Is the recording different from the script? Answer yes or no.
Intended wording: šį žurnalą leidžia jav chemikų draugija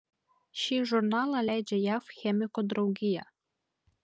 no